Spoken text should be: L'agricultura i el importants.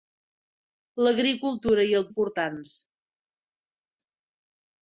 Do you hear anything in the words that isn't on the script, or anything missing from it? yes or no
no